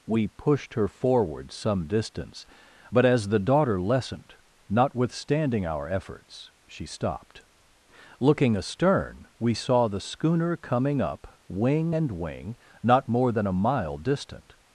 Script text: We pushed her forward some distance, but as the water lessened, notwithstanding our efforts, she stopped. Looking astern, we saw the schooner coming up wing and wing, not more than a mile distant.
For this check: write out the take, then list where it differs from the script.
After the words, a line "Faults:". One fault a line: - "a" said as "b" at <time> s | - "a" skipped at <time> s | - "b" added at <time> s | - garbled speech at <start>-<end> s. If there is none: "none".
We pushed her forward some distance, but as the daughter lessened, notwithstanding our efforts, she stopped. Looking astern, we saw the schooner coming up wing and wing, not more than a mile distant.
Faults:
- "water" said as "daughter" at 3.4 s